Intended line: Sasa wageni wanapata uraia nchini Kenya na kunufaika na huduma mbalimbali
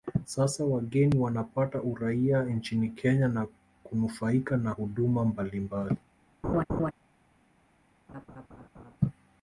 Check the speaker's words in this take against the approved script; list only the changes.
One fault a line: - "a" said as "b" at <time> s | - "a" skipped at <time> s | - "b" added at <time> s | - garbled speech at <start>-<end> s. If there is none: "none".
none